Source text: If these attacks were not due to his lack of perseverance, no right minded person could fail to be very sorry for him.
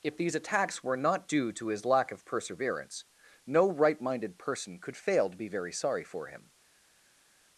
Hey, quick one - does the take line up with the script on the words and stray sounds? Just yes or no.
yes